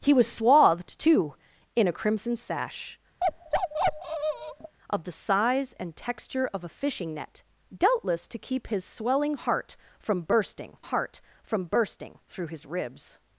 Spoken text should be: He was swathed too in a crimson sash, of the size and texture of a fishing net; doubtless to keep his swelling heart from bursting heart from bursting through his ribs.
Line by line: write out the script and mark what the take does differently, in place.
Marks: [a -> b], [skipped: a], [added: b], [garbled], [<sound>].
He was swathed too in a crimson sash, [bark] of the size and texture of a fishing net; doubtless to keep his swelling heart from bursting heart from bursting through his ribs.